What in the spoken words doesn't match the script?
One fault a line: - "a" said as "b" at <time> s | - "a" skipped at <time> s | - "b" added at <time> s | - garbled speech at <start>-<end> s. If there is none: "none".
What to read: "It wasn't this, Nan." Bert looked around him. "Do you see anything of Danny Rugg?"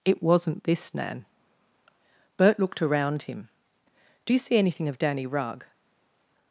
none